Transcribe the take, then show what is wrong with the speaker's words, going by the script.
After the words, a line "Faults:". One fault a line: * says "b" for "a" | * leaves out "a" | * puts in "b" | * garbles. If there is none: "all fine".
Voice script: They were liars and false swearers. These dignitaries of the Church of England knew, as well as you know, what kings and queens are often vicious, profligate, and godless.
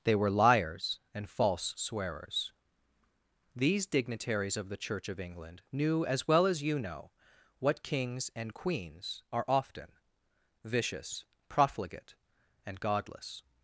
They were liars and false swearers. These dignitaries of the Church of England knew, as well as you know, what kings and queens are often vicious, profligate, and godless.
Faults:
all fine